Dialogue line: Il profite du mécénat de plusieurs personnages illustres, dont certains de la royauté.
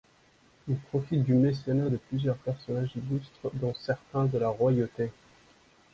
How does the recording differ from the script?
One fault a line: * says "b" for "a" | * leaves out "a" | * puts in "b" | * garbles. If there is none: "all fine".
all fine